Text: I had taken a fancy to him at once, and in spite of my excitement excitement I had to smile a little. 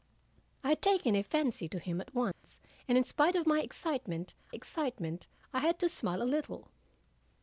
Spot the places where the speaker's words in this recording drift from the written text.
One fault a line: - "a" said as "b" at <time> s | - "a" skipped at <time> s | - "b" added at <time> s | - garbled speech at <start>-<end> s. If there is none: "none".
none